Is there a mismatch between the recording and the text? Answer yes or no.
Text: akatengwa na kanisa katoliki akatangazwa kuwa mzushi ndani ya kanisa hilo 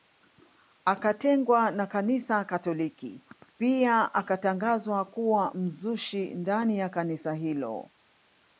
yes